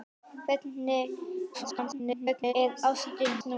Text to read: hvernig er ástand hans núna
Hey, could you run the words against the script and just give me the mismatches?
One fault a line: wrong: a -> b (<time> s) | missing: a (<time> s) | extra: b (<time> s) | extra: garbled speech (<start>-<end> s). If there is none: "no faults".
extra: garbled speech (1.5-2.5 s)
missing: hans (3.3 s)